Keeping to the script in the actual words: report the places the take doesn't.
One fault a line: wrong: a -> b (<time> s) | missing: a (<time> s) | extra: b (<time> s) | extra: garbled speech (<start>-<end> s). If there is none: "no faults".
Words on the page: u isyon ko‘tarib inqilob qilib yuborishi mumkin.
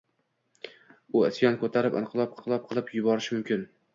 extra: inqilob (2.4 s)